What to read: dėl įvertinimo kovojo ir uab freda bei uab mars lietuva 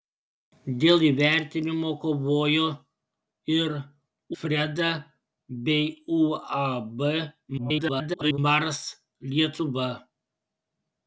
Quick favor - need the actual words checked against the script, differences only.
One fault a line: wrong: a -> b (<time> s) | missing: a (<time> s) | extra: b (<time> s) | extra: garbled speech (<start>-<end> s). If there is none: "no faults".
missing: uab (3.8 s)
extra: garbled speech (7.6-8.4 s)